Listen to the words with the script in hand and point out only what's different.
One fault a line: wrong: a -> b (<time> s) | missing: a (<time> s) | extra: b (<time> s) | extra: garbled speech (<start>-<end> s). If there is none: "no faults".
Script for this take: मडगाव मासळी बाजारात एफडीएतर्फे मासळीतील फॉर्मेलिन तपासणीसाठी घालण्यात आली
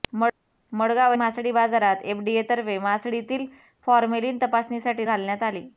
no faults